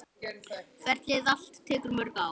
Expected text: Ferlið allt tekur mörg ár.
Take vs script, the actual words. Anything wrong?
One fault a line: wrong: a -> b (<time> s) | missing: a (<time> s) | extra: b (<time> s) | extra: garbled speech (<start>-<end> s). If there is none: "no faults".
no faults